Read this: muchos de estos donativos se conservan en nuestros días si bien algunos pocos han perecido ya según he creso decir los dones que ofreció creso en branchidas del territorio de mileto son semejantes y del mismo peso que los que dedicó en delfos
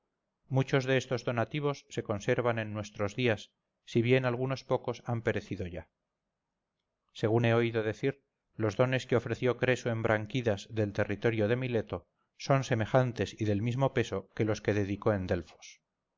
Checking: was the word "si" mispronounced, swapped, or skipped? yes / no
no